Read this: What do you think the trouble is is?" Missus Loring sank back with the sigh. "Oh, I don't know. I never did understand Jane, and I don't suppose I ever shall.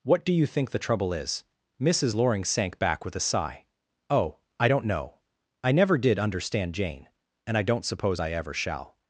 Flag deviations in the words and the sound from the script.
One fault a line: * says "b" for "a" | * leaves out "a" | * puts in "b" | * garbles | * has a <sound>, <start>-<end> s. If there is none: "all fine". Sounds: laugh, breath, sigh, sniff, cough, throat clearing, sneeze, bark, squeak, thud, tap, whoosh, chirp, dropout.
* leaves out "is"
* says "a" for "the"